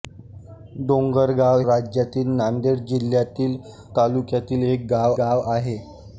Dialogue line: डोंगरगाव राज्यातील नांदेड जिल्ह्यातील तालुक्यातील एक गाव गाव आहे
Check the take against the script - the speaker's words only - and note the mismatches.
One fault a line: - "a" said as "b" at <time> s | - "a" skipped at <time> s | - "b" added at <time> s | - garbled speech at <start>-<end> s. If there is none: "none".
none